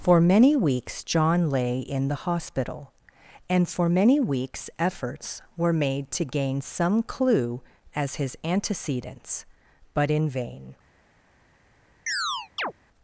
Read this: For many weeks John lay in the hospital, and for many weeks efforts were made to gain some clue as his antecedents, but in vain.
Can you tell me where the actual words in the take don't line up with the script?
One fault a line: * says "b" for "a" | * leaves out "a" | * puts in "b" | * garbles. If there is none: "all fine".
all fine